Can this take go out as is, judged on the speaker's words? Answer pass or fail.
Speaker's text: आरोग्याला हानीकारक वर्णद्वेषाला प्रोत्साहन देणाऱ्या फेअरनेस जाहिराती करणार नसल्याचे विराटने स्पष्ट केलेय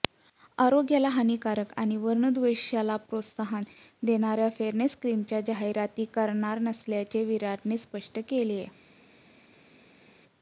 fail